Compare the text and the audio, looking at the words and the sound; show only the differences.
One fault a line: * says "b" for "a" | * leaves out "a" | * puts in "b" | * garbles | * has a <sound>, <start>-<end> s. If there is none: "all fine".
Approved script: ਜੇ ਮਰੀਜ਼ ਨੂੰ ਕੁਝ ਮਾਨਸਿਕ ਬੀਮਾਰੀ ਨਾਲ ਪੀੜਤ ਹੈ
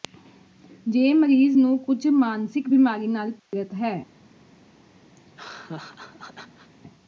* has a dropout, 3.4-3.5 s
* has a laugh, 5.2-6.7 s